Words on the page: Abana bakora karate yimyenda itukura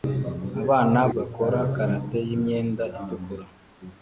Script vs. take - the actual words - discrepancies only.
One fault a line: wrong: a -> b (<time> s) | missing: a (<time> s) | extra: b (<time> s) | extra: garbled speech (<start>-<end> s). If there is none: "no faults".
no faults